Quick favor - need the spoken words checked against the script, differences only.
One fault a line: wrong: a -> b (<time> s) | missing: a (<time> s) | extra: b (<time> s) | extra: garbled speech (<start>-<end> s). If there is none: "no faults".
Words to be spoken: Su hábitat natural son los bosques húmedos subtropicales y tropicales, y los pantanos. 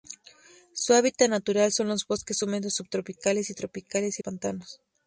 missing: los (4.2 s)